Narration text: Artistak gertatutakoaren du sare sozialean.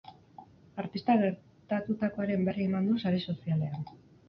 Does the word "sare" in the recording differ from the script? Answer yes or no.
no